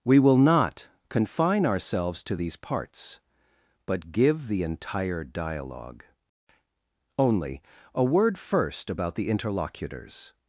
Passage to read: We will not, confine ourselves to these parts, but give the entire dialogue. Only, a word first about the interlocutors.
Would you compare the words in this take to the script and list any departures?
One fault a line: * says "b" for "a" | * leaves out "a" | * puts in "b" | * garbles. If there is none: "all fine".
all fine